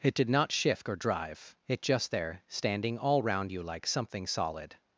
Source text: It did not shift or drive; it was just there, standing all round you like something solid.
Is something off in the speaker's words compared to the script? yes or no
yes